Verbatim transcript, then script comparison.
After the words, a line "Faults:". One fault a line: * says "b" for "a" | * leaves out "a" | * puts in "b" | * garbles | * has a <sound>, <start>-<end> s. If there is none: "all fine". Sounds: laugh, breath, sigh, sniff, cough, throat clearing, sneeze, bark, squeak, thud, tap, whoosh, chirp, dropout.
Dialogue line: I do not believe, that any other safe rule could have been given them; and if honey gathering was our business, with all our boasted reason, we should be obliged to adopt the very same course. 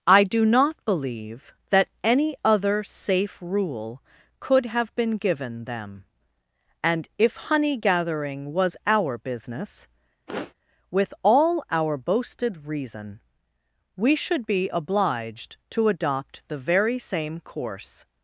I do not believe, that any other safe rule could have been given them; and if honey gathering was our business, with all our boasted reason, we should be obliged to adopt the very same course.
Faults:
* has a sniff, 10.3-10.5 s